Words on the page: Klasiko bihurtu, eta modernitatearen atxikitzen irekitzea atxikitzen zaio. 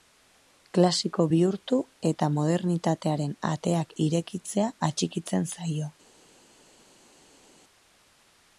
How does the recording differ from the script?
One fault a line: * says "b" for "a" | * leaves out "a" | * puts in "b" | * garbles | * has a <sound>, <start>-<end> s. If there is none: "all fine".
* says "ateak" for "atxikitzen"